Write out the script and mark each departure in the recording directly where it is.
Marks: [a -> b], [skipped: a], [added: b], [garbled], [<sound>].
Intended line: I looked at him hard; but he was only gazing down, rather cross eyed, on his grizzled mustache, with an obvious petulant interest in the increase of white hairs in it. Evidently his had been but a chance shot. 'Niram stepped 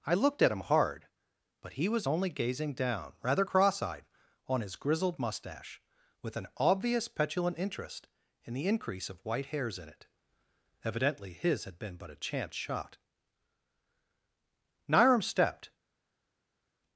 I looked at him hard; but he was only gazing down, rather cross eyed, on his grizzled mustache, with an obvious petulant interest in the increase of white hairs in it. Evidently his had been but a chance shot. 'Niram stepped